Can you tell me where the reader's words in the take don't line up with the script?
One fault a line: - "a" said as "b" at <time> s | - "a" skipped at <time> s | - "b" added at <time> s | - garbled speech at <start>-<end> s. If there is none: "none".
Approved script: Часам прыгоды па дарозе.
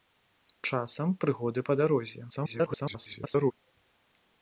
- garbled speech at 2.3-3.5 s